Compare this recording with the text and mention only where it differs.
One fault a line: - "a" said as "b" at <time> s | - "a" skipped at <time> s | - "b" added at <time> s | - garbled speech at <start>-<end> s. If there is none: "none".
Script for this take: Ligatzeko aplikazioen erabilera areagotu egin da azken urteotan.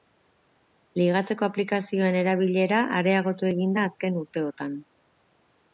none